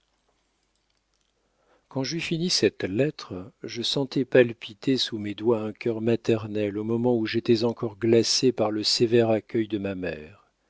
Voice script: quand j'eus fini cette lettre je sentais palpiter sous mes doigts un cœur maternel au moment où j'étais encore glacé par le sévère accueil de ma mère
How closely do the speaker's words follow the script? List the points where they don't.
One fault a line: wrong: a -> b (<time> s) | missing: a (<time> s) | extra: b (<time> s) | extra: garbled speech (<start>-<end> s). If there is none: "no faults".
no faults